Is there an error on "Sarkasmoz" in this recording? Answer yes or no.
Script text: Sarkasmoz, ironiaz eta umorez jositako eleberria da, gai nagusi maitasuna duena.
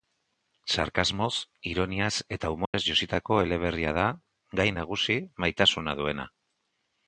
no